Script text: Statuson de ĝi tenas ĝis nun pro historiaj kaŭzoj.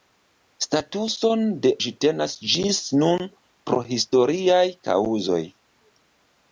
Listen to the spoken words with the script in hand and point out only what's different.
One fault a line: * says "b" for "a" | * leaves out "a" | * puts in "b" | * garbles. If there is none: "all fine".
all fine